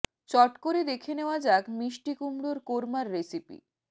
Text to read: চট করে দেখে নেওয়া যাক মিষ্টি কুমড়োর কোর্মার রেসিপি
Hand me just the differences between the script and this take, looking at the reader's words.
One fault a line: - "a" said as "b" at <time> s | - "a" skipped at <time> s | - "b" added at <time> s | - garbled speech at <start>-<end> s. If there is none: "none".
none